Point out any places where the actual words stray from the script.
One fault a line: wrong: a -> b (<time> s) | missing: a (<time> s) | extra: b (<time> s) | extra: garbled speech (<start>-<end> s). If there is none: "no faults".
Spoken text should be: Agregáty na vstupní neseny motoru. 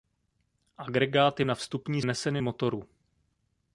no faults